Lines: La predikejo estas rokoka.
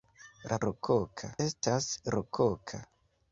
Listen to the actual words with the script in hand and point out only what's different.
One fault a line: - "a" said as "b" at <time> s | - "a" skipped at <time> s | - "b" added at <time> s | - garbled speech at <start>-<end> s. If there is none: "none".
- "predikejo" said as "rokoka" at 0.7 s